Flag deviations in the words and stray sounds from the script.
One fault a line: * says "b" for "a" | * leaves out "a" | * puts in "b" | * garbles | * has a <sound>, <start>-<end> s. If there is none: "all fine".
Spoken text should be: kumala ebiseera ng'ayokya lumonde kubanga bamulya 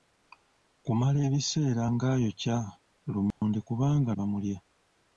* has a dropout, 3.3-3.4 s